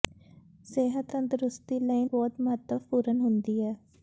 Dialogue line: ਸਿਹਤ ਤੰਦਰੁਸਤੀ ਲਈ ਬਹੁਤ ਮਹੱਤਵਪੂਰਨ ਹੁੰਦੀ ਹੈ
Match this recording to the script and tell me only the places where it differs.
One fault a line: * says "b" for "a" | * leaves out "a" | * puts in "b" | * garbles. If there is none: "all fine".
all fine